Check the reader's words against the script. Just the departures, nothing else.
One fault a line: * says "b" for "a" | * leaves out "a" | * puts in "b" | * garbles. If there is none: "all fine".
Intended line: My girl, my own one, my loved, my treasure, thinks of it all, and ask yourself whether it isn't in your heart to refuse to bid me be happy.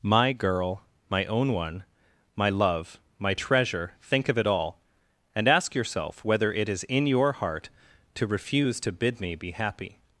* says "love" for "loved"
* says "think" for "thinks"
* says "is" for "isn't"